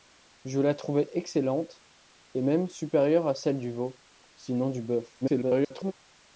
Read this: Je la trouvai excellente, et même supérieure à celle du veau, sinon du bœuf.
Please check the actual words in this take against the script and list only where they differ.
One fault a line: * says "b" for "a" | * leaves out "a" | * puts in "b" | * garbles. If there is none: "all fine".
* garbles